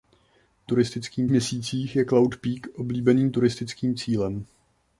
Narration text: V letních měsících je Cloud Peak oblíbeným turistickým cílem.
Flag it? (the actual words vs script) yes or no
yes